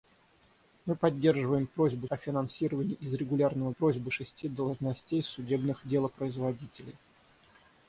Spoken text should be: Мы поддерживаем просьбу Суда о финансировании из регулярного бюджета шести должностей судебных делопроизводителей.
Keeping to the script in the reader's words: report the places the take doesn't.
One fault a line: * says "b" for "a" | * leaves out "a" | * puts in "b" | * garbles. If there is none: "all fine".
* leaves out "Суда"
* says "просьбу" for "бюджета"